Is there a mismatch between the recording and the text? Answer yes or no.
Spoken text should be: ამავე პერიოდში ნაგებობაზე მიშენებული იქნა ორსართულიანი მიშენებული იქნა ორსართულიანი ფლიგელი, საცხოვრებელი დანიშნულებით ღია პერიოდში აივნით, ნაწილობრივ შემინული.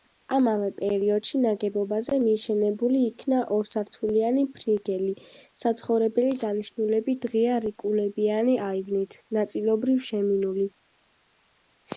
yes